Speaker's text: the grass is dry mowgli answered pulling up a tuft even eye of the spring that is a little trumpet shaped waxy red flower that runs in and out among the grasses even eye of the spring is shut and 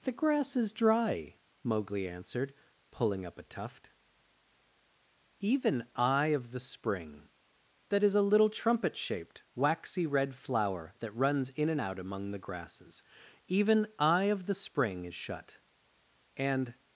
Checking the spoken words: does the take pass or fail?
pass